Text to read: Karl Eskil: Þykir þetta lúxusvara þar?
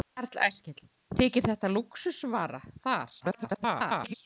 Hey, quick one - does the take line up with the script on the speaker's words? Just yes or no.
no